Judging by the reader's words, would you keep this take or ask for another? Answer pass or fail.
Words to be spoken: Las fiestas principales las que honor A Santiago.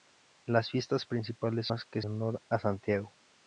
pass